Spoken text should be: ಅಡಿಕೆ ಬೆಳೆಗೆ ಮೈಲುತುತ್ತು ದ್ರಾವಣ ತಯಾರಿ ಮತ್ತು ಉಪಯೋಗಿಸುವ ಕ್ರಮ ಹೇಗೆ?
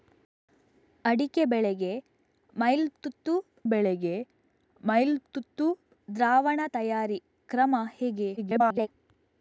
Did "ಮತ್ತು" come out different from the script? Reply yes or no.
yes